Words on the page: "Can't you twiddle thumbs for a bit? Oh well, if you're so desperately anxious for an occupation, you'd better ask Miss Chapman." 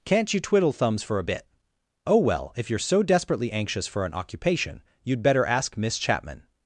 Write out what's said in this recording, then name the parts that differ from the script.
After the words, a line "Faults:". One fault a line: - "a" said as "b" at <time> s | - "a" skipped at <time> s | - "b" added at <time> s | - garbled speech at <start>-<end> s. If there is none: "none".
"Can't you twiddle thumbs for a bit? Oh well, if you're so desperately anxious for an occupation, you'd better ask Miss Chapman."
Faults:
none